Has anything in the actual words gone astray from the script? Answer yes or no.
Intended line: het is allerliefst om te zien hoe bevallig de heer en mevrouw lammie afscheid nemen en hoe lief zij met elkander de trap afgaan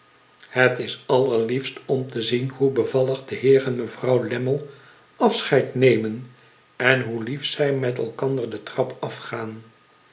no